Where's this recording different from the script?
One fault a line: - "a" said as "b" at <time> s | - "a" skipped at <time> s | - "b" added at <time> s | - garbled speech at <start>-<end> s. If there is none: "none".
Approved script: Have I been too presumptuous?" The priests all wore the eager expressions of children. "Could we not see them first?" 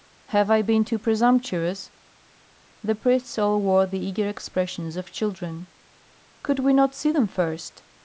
none